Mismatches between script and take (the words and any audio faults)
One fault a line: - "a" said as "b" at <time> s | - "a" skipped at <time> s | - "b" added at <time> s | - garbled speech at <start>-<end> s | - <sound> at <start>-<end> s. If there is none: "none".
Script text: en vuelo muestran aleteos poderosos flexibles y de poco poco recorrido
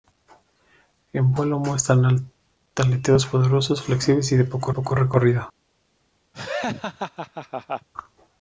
- laugh at 6.3-7.9 s